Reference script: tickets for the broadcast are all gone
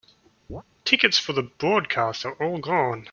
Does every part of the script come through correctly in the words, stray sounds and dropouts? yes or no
no